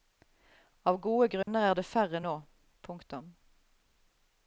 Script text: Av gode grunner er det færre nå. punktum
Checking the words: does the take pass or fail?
pass